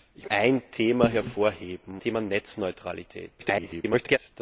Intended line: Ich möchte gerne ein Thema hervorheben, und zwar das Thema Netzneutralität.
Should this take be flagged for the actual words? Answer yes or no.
yes